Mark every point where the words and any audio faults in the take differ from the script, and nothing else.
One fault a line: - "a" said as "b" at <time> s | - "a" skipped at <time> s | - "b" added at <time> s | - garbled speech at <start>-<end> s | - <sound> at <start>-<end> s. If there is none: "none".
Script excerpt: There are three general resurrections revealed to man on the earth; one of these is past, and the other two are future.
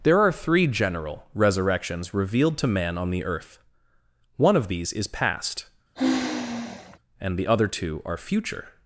- sigh at 5.9-7.0 s